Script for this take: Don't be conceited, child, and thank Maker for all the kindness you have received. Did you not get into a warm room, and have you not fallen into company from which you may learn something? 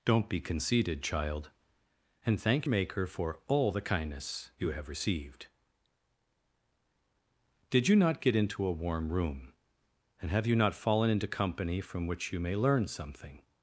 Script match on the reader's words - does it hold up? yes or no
yes